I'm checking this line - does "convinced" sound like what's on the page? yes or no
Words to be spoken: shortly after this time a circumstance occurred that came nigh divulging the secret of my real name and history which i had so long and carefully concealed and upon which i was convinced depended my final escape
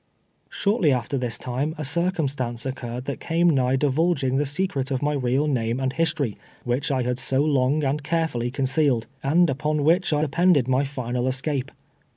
no